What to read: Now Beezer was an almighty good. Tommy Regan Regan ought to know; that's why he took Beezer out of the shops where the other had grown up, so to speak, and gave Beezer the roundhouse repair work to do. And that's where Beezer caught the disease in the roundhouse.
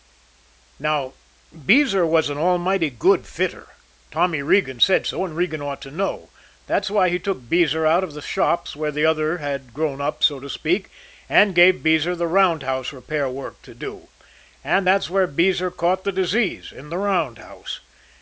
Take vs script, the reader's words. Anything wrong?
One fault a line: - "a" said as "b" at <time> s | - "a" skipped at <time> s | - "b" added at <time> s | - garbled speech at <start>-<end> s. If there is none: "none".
- "fitter" added at 3.3 s
- "said so and" added at 4.8 s